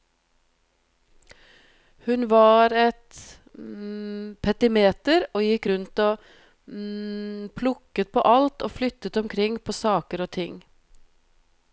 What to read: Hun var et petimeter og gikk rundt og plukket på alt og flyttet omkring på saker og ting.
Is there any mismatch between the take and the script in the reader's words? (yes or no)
no